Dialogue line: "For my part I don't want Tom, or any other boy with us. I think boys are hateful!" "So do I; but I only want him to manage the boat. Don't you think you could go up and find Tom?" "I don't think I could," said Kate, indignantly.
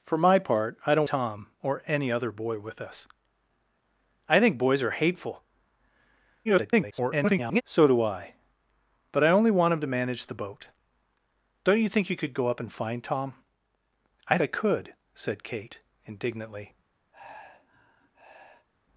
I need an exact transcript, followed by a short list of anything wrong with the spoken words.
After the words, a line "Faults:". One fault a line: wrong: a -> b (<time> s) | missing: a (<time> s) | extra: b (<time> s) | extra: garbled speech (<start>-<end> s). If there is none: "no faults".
"For my part I don't Tom, or any other boy with us. I think boys are hateful!" [garbled] "So do I; but I only want him to manage the boat. Don't you think you could go up and find Tom?" "I I could," said Kate, indignantly.
Faults:
missing: want (1.1 s)
extra: garbled speech (6.4-7.6 s)
missing: don't think (14.4 s)